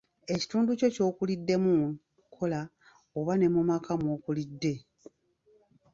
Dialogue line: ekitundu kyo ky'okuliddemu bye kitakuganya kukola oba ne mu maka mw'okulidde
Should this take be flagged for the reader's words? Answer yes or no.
yes